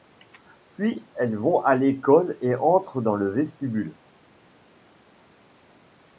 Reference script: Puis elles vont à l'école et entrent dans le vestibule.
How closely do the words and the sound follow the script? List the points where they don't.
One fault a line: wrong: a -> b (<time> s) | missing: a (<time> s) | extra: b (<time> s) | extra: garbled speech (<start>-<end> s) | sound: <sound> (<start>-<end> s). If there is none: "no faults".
no faults